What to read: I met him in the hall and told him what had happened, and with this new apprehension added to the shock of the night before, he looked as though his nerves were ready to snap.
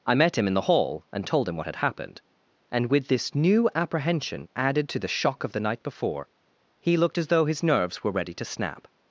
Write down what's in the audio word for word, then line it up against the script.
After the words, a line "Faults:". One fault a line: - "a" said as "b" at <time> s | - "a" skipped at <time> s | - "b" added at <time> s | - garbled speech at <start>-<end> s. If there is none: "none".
I met him in the hall and told him what had happened, and with this new apprehension added to the shock of the night before, he looked as though his nerves were ready to snap.
Faults:
none